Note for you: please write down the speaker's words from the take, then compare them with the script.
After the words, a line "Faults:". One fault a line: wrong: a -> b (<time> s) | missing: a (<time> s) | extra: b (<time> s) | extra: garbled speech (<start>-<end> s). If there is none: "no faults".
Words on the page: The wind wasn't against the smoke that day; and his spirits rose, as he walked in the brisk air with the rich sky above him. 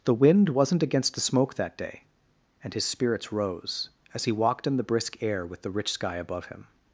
The wind wasn't against the smoke that day; and his spirits rose, as he walked in the brisk air with the rich sky above him.
Faults:
no faults